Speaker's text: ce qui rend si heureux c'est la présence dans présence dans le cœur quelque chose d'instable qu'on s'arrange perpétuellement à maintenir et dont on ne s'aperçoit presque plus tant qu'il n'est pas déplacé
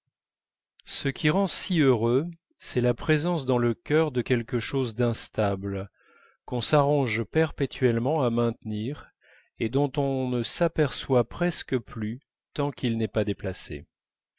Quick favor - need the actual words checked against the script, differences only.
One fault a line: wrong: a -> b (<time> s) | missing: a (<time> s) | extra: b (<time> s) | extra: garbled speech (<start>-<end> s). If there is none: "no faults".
missing: présence dans (3.6 s)
extra: de (4.1 s)